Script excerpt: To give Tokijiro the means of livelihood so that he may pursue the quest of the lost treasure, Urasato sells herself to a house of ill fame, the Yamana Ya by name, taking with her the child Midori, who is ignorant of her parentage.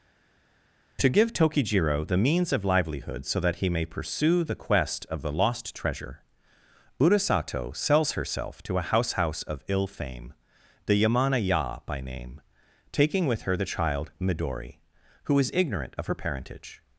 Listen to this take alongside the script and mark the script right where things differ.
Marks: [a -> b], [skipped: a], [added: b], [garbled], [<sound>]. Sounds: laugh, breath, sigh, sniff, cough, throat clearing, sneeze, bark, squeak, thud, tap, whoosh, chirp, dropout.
To give Tokijiro the means of livelihood so that he may pursue the quest of the lost treasure, Urasato sells herself to a house [added: house] of ill fame, the Yamana Ya by name, taking with her the child Midori, who is ignorant of her parentage.